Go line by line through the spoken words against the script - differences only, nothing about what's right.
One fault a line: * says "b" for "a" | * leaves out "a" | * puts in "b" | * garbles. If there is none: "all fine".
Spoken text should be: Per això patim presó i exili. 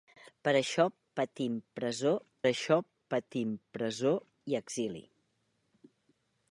* puts in "això patim presó"